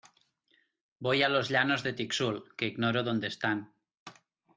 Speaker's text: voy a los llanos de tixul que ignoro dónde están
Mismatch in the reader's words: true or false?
false